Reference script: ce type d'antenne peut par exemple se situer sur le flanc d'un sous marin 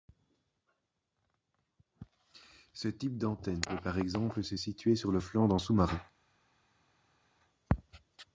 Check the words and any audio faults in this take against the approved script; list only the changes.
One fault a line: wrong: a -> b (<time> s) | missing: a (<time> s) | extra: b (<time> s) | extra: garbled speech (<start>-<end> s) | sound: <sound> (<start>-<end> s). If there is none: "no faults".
no faults